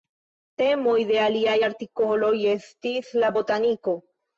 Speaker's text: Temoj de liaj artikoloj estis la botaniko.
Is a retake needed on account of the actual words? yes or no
no